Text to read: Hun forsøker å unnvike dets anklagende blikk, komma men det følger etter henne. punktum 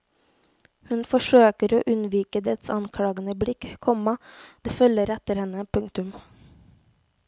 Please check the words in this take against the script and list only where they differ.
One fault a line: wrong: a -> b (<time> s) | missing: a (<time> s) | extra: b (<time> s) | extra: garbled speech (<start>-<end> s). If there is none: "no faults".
missing: men (4.1 s)